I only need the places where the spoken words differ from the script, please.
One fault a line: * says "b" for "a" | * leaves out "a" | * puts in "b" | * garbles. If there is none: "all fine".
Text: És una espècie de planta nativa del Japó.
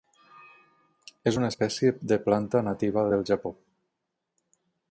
all fine